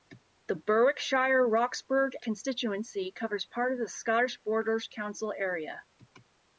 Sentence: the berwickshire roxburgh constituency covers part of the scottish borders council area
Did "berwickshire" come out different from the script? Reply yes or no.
no